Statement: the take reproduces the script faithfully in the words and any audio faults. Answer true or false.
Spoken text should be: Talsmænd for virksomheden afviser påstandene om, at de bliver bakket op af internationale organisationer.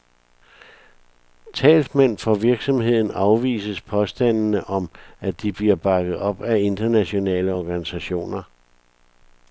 true